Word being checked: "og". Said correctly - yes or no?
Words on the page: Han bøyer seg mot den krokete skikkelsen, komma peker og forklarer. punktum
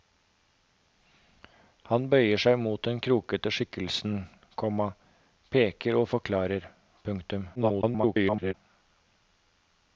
yes